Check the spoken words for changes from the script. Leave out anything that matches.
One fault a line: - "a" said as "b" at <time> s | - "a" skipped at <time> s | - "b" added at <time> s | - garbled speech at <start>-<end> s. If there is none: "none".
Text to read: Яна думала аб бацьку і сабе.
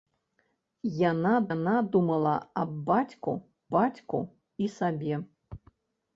- "яна" added at 1.5 s
- "бацьку" added at 3.7 s